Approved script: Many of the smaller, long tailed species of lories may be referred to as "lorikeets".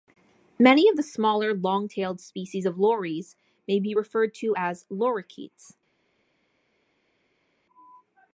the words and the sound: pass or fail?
pass